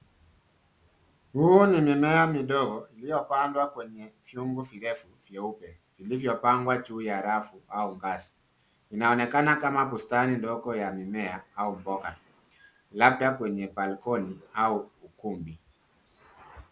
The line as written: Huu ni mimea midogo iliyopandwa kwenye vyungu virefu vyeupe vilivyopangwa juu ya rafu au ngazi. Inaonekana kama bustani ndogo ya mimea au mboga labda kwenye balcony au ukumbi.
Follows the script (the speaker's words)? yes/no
yes